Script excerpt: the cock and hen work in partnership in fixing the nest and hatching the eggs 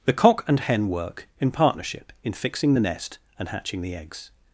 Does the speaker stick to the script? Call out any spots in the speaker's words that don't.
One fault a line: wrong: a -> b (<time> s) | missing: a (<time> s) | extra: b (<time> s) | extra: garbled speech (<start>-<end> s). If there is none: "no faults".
no faults